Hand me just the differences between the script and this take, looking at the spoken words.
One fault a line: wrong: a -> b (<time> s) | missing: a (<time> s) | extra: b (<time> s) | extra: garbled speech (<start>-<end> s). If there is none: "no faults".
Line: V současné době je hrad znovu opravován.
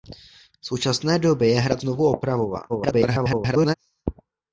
extra: garbled speech (2.7-3.7 s)